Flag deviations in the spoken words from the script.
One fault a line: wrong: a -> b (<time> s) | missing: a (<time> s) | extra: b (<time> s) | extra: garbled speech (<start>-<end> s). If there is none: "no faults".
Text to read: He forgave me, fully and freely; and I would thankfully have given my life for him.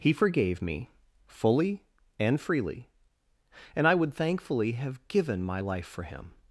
no faults